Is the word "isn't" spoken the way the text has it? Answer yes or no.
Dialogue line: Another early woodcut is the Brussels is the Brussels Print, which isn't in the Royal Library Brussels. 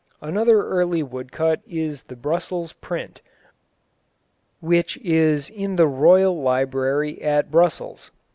no